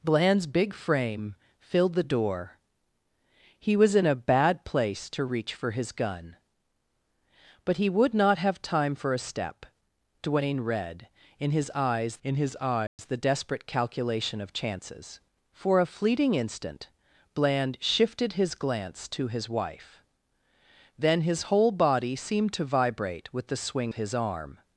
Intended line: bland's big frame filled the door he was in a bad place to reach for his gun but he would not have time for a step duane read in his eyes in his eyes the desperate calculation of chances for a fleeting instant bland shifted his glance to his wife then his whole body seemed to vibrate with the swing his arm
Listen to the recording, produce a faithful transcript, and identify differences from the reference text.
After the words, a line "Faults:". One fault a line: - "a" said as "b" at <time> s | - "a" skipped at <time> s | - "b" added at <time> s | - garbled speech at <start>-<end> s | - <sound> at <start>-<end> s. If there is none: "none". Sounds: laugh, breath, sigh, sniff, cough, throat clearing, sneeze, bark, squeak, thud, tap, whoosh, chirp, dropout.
bland's big frame filled the door he was in a bad place to reach for his gun but he would not have time for a step duane read in his eyes in his eyes the desperate calculation of chances for a fleeting instant bland shifted his glance to his wife then his whole body seemed to vibrate with the swing his arm
Faults:
- dropout at 12.9-13.0 s